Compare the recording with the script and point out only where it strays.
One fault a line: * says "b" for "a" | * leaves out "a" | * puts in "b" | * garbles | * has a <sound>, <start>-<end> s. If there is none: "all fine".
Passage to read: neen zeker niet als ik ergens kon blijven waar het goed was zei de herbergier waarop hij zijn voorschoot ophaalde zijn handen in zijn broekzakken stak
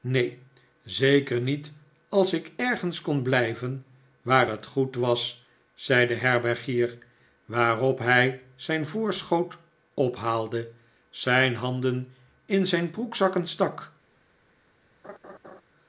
* has a laugh, 15.0-15.6 s